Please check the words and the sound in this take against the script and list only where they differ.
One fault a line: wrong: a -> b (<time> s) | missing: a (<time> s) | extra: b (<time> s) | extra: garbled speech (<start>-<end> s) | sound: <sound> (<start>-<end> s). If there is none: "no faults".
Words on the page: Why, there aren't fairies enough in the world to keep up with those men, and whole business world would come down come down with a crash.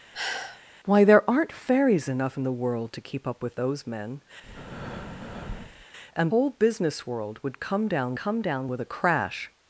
sound: sigh (0.1-0.6 s)
sound: breath (4.4-5.9 s)